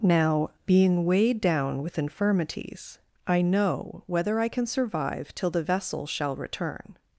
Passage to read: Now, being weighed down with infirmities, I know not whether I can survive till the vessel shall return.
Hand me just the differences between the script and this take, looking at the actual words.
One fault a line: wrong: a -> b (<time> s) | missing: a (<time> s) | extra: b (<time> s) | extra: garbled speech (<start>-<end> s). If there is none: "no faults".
missing: not (4.0 s)